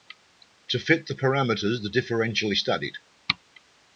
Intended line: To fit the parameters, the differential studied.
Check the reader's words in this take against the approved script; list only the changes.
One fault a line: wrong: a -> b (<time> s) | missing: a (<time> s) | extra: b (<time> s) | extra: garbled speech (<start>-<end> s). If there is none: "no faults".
no faults